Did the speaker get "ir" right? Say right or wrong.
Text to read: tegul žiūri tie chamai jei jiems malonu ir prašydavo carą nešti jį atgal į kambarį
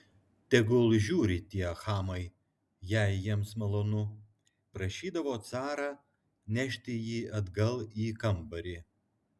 wrong